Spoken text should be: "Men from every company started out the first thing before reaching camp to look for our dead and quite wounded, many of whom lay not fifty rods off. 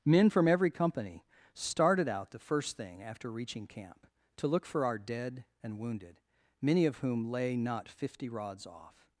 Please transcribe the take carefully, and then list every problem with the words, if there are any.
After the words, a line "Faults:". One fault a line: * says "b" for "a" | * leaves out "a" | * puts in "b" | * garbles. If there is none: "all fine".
"Men from every company started out the first thing after reaching camp to look for our dead and wounded, many of whom lay not fifty rods off.
Faults:
* says "after" for "before"
* leaves out "quite"